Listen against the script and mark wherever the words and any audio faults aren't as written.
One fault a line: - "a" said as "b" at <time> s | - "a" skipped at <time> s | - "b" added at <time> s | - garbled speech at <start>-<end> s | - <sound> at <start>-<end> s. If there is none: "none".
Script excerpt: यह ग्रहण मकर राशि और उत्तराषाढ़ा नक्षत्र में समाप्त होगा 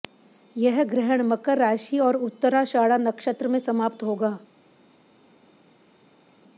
none